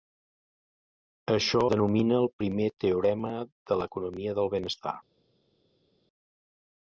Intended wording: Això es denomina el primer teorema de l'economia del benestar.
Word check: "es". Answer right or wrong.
wrong